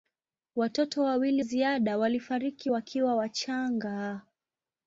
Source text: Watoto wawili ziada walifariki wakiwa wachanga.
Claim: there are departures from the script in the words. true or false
false